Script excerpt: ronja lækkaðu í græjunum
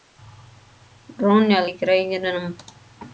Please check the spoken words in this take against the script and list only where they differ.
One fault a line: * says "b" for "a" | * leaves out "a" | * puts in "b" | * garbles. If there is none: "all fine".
* leaves out "lækkaðu"